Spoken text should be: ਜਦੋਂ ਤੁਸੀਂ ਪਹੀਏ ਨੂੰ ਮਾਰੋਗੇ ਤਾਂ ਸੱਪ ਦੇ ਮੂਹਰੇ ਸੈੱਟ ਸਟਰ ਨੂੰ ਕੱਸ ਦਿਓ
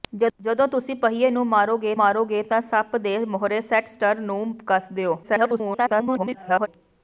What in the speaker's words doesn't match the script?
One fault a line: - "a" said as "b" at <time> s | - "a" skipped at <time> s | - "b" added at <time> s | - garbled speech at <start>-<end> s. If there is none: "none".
- "ਮਾਰੋਗੇ" added at 1.9 s
- garbled speech at 5.2-6.7 s